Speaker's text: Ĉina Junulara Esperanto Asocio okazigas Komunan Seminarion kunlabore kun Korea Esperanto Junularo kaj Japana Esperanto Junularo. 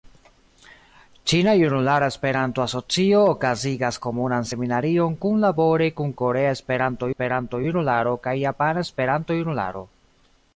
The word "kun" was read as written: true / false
true